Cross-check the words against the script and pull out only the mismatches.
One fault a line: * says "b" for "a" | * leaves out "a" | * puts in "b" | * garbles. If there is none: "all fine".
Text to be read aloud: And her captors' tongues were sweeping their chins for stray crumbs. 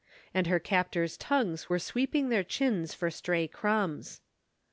all fine